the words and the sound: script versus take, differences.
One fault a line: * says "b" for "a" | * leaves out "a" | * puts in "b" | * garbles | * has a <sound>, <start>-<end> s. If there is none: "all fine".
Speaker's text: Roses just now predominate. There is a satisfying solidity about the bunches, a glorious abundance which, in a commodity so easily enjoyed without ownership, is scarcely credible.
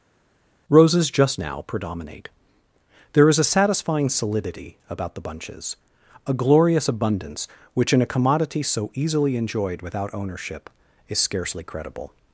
all fine